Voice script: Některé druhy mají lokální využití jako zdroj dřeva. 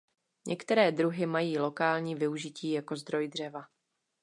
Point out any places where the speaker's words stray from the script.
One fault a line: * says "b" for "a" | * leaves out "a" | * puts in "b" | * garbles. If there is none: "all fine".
all fine